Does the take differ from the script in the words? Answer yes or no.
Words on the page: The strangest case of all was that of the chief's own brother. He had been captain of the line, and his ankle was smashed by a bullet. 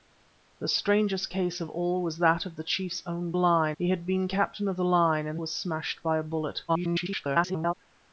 yes